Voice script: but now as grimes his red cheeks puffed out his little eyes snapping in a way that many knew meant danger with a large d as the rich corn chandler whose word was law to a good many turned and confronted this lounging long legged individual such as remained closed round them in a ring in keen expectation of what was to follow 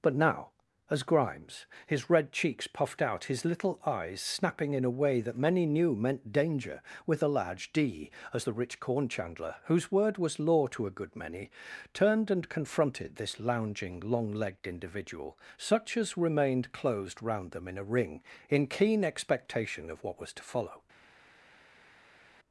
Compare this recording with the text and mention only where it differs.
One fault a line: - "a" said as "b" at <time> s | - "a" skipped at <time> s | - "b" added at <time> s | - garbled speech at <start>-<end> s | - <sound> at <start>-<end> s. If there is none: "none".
none